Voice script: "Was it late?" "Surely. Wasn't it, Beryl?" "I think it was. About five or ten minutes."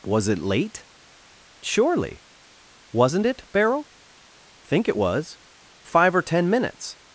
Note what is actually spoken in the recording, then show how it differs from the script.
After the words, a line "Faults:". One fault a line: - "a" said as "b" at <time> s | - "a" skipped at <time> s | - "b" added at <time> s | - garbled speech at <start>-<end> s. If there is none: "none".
"Was it late?" "Surely. Wasn't it, Beryl?" "think it was. Five or ten minutes."
Faults:
- "I" skipped at 3.9 s
- "About" skipped at 5.4 s